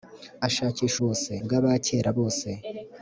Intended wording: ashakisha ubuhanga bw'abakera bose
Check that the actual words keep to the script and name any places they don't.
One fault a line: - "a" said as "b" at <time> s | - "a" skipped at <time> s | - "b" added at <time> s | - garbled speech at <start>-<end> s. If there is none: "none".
- "ubuhanga" said as "bose" at 1.0 s